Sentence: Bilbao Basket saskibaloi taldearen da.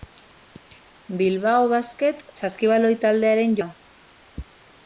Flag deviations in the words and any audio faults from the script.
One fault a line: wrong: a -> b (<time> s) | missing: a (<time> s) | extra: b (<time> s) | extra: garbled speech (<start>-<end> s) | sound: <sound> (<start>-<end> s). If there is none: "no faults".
no faults